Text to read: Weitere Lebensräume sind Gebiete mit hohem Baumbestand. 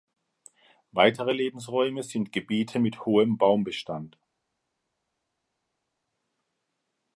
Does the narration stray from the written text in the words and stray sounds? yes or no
no